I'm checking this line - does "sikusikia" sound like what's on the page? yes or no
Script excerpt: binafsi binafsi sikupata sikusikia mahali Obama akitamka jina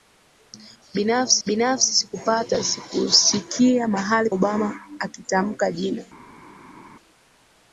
yes